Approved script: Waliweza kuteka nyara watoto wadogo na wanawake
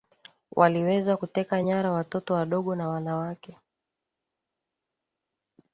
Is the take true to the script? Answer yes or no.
yes